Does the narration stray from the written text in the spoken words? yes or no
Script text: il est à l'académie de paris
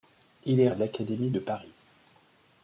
no